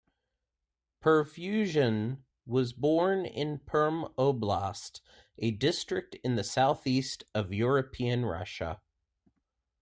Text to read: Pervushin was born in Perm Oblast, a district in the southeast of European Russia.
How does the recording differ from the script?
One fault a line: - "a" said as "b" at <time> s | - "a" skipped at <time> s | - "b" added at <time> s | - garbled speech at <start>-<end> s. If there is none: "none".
none